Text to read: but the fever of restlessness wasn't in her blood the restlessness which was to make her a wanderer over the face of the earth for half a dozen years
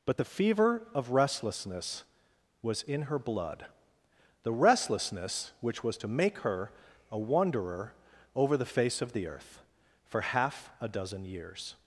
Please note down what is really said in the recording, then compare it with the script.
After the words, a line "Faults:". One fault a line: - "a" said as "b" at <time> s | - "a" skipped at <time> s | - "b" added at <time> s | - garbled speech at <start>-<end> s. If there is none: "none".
but the fever of restlessness was in her blood the restlessness which was to make her a wanderer over the face of the earth for half a dozen years
Faults:
- "wasn't" said as "was" at 2.6 s